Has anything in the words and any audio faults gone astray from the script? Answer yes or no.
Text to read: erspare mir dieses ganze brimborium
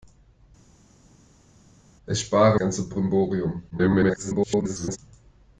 yes